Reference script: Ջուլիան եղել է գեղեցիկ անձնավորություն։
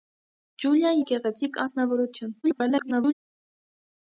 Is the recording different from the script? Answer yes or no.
yes